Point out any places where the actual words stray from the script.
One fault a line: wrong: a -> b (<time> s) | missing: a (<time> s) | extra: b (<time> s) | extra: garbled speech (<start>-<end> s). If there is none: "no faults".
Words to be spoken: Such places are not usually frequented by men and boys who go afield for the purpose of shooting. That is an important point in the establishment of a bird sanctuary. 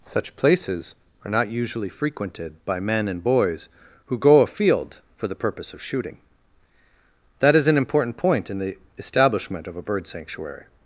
no faults